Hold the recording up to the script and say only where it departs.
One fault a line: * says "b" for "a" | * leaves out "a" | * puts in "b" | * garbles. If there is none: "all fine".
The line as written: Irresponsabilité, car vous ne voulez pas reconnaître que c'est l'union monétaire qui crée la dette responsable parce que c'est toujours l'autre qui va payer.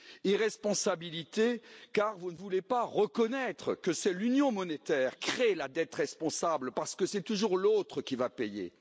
* leaves out "qui"